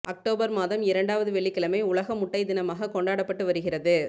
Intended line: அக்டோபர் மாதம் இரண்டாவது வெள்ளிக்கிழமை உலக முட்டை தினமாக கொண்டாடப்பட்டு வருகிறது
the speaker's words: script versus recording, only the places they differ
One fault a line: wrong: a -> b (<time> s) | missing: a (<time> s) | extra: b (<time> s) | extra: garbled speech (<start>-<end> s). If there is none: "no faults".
no faults